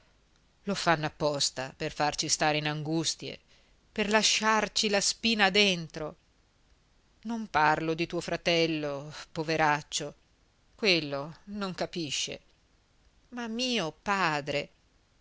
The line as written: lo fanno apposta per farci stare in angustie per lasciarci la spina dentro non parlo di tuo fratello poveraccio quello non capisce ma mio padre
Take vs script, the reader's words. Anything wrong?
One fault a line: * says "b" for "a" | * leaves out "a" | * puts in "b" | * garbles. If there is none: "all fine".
all fine